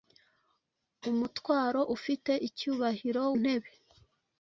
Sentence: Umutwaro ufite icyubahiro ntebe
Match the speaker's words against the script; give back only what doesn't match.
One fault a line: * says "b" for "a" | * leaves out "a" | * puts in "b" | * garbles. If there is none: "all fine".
all fine